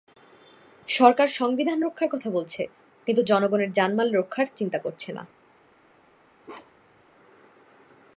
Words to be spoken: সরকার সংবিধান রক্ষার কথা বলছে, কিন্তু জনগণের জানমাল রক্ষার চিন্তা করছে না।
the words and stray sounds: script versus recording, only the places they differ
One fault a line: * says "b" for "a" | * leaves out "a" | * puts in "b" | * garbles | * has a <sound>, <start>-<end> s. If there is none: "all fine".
* has a bark, 6.4-7.0 s